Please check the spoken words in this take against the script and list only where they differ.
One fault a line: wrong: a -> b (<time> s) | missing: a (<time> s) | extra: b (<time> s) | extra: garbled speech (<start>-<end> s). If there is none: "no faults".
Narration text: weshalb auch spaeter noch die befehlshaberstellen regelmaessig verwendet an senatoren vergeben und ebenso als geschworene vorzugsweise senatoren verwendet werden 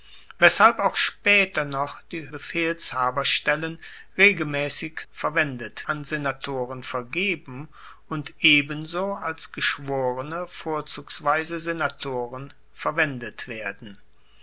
no faults